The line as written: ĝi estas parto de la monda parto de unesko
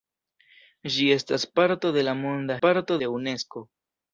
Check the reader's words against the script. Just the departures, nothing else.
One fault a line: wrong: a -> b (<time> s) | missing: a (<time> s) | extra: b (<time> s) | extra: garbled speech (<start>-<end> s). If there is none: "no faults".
no faults